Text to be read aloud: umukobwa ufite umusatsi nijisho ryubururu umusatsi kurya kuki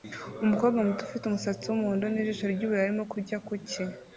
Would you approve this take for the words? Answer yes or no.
no